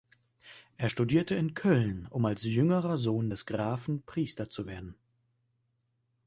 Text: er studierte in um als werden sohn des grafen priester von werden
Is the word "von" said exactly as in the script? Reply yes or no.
no